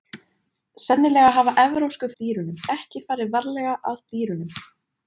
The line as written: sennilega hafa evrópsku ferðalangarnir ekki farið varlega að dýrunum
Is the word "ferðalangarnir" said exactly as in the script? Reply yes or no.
no